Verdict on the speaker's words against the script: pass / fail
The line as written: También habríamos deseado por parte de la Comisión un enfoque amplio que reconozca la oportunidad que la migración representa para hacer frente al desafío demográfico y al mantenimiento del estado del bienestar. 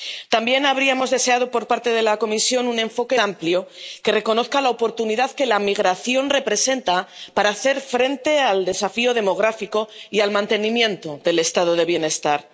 pass